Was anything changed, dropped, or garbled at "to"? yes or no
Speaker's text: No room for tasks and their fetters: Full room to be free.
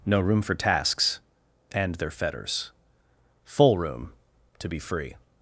no